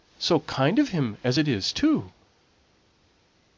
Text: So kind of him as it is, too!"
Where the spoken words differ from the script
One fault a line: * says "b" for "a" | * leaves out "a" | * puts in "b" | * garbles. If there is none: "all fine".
all fine